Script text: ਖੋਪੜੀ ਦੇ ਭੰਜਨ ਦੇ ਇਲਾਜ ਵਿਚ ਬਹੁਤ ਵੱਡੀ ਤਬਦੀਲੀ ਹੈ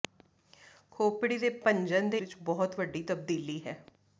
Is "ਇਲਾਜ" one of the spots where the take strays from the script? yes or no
yes